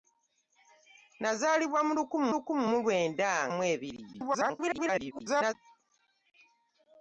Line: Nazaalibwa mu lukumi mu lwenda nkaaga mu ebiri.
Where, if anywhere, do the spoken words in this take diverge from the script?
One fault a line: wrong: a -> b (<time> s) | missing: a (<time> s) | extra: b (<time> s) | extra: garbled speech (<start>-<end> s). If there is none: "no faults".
extra: lukumi (2.3 s)
missing: nkaaga (3.3 s)
extra: garbled speech (4.1-5.5 s)